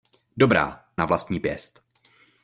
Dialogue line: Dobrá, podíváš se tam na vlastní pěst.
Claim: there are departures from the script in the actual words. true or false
true